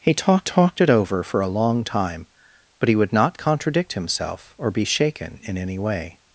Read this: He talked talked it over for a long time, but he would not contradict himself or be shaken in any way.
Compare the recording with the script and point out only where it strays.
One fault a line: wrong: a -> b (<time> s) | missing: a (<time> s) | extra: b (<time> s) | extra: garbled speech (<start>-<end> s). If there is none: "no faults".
no faults